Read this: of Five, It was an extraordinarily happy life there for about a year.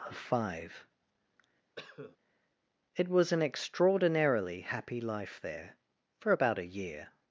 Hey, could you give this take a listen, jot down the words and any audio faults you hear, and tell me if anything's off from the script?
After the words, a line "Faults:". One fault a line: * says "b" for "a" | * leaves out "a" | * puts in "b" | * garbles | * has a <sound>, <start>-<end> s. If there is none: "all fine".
of Five, It was an extraordinarily happy life there for about a year.
Faults:
* has a cough, 1.8-2.2 s